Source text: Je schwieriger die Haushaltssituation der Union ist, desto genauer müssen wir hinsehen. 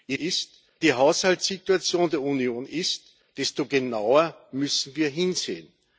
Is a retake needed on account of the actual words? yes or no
yes